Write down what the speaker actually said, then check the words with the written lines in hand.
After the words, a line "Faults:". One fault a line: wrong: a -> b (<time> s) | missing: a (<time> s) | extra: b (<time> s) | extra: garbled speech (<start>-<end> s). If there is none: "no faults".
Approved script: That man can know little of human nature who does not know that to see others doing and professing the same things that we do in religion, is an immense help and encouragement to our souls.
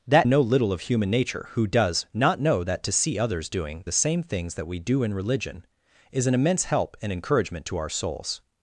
That know little of human nature who does not know that to see others doing the same things that we do in religion, is an immense help and encouragement to our souls.
Faults:
missing: man can (0.3 s)
missing: and professing (3.8 s)